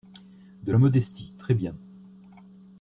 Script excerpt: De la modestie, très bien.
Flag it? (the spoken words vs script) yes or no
no